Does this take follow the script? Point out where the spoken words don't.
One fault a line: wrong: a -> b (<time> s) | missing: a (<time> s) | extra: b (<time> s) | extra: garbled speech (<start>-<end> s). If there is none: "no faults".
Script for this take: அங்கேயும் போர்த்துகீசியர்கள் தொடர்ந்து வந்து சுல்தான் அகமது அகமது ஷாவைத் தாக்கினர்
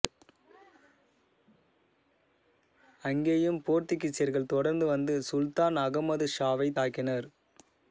missing: அகமது (6.3 s)